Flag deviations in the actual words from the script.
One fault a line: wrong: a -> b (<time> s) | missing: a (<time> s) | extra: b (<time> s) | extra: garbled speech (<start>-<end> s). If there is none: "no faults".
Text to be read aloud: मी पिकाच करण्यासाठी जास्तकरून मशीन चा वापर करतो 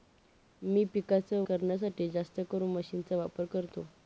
no faults